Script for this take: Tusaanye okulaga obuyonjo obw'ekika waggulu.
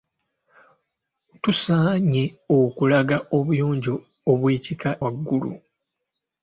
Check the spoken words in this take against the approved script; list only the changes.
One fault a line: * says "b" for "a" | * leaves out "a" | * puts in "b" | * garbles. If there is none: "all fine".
all fine